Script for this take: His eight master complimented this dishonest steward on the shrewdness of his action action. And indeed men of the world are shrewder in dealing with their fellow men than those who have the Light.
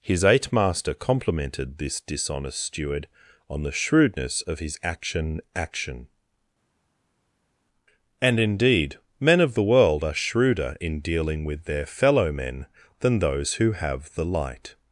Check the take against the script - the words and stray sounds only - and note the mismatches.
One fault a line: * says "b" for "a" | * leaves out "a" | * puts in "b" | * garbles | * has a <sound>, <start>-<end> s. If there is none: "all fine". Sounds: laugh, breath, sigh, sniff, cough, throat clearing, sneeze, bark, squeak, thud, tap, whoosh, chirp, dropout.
all fine